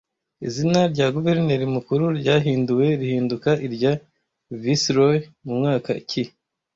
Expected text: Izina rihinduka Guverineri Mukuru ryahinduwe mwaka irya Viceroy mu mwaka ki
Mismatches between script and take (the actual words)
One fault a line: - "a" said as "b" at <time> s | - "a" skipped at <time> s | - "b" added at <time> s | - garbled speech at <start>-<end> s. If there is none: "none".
- "rihinduka" said as "rya" at 0.9 s
- "mwaka" said as "rihinduka" at 3.0 s